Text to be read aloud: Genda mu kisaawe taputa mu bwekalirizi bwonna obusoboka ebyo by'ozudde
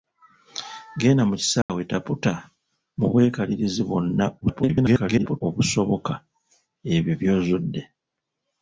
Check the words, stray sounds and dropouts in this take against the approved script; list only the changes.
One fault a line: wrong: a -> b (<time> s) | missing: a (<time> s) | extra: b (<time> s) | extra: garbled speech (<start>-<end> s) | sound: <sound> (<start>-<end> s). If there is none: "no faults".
sound: dropout (1.6-1.7 s)
extra: garbled speech (4.4-5.4 s)